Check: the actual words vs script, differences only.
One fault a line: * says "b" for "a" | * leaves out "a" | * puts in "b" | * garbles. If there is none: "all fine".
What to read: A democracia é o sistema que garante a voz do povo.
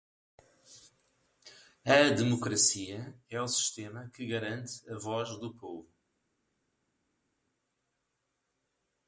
all fine